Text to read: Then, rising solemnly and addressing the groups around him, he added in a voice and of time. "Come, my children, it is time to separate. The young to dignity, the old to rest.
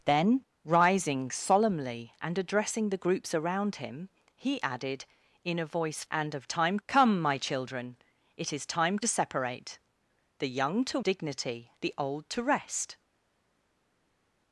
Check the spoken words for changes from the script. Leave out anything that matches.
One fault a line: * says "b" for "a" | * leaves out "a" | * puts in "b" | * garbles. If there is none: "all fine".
all fine